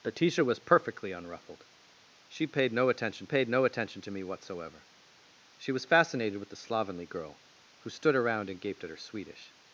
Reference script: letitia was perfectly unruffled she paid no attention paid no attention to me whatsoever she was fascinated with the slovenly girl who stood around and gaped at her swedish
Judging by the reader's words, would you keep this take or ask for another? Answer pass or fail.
pass